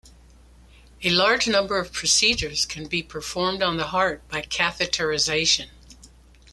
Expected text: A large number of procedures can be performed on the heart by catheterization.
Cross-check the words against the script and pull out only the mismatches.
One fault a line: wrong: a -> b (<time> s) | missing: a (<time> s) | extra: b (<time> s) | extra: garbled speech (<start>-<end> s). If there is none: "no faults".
no faults